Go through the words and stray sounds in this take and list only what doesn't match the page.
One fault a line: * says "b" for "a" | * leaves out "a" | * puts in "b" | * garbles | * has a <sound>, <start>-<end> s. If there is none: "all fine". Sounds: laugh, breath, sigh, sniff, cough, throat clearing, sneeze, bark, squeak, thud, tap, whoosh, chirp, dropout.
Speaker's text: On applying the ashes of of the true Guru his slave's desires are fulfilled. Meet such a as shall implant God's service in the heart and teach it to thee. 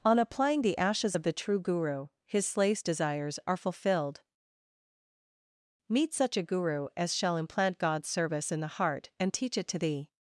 * leaves out "of"
* puts in "guru"